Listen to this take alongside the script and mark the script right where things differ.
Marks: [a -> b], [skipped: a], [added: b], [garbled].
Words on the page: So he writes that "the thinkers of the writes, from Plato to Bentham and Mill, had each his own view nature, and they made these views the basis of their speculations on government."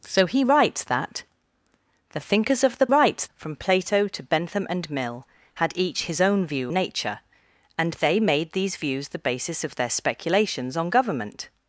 So he writes that "the thinkers of the writes, from Plato to Bentham and Mill, had each his own view nature, and they made these views the basis of their speculations on government."